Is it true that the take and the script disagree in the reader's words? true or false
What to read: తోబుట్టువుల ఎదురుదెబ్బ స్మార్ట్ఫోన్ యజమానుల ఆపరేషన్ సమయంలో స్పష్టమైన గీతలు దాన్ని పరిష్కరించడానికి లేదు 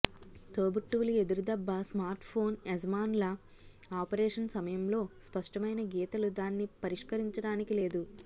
false